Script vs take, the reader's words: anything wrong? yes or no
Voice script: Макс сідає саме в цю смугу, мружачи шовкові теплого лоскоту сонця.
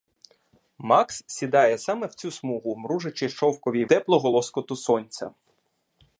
no